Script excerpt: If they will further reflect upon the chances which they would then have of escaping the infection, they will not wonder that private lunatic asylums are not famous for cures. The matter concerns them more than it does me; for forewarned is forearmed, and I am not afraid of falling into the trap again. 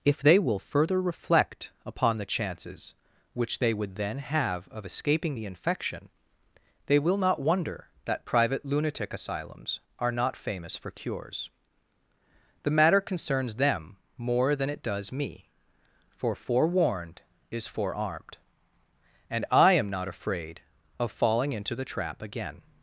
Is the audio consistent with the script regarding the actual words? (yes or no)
yes